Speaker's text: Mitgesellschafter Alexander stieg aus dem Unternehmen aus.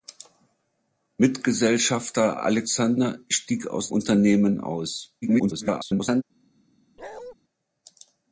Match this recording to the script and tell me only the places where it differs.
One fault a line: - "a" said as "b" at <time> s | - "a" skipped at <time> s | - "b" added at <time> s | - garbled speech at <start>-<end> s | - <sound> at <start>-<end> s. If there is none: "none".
- "dem" skipped at 3.9 s
- garbled speech at 5.2-6.2 s
- bark at 7.0-7.3 s